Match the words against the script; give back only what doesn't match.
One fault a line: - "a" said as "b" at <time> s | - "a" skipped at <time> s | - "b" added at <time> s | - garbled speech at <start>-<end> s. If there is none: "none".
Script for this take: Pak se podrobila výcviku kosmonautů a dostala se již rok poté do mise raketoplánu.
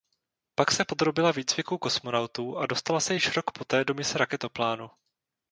none